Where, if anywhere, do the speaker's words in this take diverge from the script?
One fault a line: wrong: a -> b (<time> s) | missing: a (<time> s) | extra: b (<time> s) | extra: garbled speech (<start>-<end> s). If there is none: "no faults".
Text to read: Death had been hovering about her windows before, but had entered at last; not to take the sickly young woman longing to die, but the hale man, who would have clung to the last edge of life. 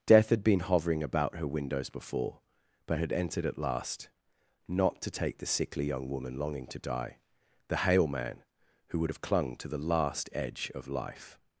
missing: but (7.2 s)